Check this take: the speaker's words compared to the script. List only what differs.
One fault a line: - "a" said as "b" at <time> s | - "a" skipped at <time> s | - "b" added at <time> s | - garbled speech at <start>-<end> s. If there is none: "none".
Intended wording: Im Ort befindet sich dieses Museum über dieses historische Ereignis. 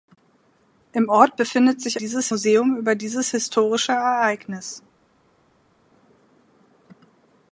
none